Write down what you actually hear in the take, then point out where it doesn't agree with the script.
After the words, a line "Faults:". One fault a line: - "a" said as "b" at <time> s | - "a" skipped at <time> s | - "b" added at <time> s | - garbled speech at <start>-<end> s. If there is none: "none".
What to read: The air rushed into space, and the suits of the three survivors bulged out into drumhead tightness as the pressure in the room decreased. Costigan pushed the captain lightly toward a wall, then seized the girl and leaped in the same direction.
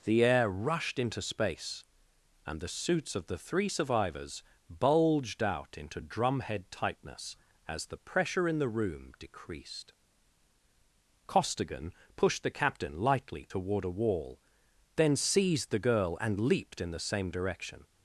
The air rushed into space, and the suits of the three survivors bulged out into drumhead tightness as the pressure in the room decreased. Costigan pushed the captain lightly toward a wall, then seized the girl and leaped in the same direction.
Faults:
none